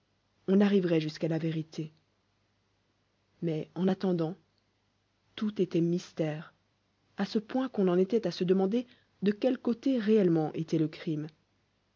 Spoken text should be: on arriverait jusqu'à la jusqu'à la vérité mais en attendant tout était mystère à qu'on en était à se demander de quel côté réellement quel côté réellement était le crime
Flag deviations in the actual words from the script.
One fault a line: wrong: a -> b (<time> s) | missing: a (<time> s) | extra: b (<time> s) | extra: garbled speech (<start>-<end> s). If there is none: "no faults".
missing: jusqu'à la (1.4 s)
extra: ce point (7.2 s)
missing: quel côté réellement (10.5 s)